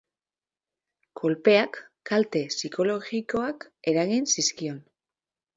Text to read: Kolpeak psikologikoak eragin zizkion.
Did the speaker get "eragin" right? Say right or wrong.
right